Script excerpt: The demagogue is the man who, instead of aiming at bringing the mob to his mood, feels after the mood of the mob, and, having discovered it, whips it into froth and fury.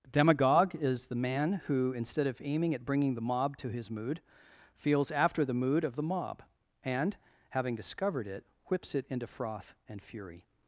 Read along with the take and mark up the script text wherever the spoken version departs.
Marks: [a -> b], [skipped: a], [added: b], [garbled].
[skipped: The] demagogue is the man who, instead of aiming at bringing the mob to his mood, feels after the mood of the mob, and, having discovered it, whips it into froth and fury.